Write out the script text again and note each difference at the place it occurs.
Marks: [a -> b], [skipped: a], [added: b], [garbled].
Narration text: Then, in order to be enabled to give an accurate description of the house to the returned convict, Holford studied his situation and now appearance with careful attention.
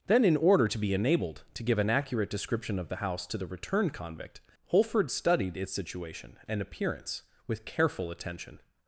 Then, in order to be enabled to give an accurate description of the house to the returned convict, Holford studied [his -> its] situation and [skipped: now] appearance with careful attention.